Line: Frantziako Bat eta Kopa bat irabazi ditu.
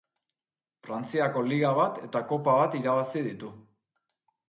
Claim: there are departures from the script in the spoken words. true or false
true